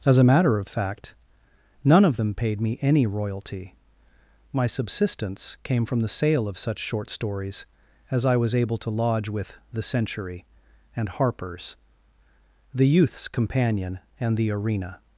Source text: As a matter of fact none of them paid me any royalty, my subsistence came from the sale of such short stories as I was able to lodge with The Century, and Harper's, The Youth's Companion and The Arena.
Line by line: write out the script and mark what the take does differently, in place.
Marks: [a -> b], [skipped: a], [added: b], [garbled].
As a matter of fact none of them paid me any royalty, my subsistence came from the sale of such short stories as I was able to lodge with The Century, and Harper's, The Youth's Companion and The Arena.